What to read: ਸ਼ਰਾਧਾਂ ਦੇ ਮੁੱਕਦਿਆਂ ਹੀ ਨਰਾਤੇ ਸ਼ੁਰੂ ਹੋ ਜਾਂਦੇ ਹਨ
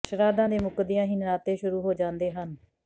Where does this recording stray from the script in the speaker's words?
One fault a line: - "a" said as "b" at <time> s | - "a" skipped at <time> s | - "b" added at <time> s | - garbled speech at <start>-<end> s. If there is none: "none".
none